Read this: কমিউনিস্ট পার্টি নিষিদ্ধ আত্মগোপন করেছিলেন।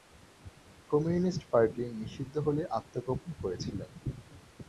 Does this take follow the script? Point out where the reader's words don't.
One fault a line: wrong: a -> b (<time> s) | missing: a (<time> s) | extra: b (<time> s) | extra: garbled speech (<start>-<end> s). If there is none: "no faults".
extra: হলে (2.4 s)